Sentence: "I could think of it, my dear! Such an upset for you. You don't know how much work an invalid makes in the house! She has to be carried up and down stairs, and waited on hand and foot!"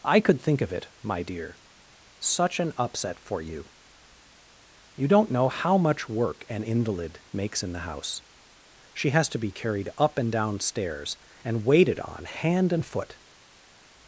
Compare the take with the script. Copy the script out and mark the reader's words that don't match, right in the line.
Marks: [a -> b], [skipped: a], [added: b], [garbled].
"I could think of it, my dear! Such an upset for you. You don't know how much work an invalid makes in the house! She has to be carried up and down stairs, and waited on hand and foot!"